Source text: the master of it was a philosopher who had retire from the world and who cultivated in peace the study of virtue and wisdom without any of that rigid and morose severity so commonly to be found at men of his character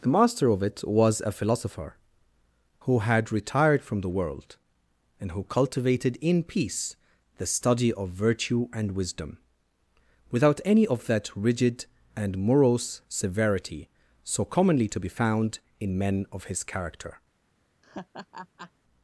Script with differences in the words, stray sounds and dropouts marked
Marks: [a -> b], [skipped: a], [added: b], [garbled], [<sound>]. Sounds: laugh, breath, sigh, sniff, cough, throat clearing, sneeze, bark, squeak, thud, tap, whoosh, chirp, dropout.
the master of it was a philosopher who had [retire -> retired] from the world and who cultivated in peace the study of virtue and wisdom without any of that rigid and morose severity so commonly to be found [at -> in] men of his character [laugh]